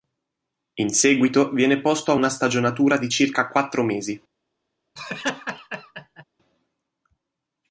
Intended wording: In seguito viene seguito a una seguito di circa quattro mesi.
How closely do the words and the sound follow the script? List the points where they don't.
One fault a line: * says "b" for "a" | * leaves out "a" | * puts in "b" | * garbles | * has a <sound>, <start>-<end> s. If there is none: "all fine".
* says "posto" for "seguito"
* says "stagionatura" for "seguito"
* has a laugh, 5.0-6.2 s